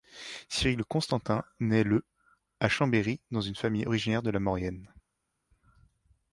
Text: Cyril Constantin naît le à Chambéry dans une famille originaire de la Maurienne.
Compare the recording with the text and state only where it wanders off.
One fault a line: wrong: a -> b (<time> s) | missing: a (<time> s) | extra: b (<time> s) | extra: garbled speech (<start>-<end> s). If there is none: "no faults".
no faults